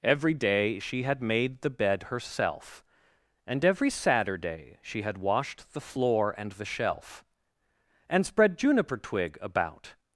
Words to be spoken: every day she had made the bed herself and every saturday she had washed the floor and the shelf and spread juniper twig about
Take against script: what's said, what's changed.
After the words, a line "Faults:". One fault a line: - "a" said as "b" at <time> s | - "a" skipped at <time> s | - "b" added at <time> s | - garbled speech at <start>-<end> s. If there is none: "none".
every day she had made the bed herself and every saturday she had washed the floor and the shelf and spread juniper twig about
Faults:
none